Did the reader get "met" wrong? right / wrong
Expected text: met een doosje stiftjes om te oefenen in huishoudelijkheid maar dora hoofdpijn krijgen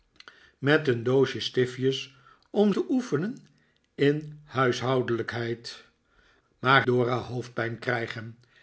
right